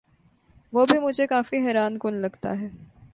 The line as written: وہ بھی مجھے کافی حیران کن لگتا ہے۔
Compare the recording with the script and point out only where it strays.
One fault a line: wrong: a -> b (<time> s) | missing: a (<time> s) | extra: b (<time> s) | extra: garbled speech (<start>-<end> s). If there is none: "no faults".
no faults